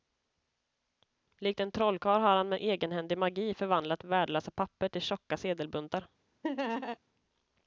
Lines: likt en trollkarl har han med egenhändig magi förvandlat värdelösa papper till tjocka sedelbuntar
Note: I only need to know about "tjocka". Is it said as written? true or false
true